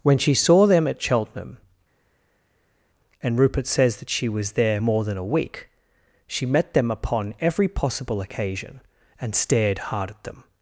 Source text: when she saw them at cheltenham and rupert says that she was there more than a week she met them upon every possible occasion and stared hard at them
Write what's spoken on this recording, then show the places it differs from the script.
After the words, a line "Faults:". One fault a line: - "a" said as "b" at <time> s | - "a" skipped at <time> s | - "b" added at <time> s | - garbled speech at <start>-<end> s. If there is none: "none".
when she saw them at cheltenham and rupert says that she was there more than a week she met them upon every possible occasion and stared hard at them
Faults:
none